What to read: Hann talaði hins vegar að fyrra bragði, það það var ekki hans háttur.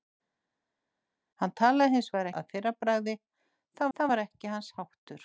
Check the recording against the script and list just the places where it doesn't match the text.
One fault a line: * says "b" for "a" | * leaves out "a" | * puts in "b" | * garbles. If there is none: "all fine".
all fine